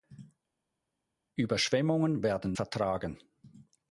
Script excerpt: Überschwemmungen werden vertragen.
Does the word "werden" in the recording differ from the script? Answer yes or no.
no